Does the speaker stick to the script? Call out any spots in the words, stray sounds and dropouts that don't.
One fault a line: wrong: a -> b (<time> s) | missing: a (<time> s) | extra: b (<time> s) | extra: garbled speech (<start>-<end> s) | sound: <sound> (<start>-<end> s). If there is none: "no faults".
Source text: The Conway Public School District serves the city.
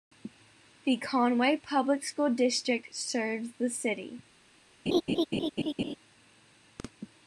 sound: laugh (4.9-6.0 s)